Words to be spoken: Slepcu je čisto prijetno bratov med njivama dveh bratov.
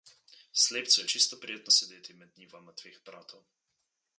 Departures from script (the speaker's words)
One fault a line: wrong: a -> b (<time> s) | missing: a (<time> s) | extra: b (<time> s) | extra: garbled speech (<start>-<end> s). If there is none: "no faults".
wrong: bratov -> sedeti (1.7 s)